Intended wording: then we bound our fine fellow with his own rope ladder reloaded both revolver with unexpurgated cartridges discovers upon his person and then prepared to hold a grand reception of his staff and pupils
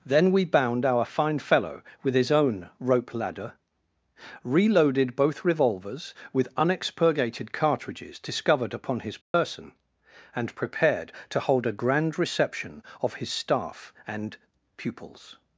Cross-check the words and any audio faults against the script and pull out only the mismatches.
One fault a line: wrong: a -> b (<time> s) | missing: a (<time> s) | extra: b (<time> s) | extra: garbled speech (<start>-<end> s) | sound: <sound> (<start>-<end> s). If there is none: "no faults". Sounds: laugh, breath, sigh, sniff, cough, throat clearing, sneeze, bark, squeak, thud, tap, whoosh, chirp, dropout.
wrong: revolver -> revolvers (5.5 s)
wrong: discovers -> discovered (8.2 s)
sound: dropout (9.2-9.3 s)
missing: then (10.6 s)